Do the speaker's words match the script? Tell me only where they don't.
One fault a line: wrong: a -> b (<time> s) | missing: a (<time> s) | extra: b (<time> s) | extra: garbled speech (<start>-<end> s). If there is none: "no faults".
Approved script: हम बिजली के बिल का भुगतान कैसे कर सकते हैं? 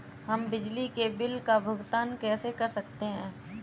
no faults